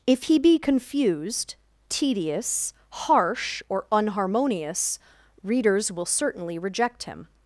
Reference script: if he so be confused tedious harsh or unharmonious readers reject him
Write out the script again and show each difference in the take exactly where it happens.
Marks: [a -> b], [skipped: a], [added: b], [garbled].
if he [skipped: so] be confused tedious harsh or unharmonious readers [added: will certainly] reject him